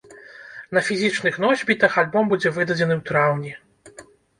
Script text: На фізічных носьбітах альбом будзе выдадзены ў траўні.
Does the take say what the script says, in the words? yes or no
yes